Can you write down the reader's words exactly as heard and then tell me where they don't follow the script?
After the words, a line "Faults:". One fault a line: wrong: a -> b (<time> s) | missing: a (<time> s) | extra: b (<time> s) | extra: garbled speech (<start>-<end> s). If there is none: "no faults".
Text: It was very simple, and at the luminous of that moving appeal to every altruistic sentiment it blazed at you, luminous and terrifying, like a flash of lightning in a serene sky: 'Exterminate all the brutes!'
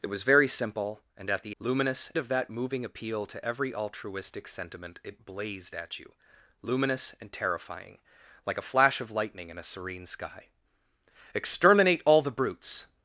It was very simple, and at the luminous of that moving appeal to every altruistic sentiment it blazed at you, luminous and terrifying, like a flash of lightning in a serene sky: 'Exterminate all the brutes!'
Faults:
no faults